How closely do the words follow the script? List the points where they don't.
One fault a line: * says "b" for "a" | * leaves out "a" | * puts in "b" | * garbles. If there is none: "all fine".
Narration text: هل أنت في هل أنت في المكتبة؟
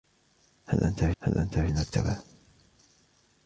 all fine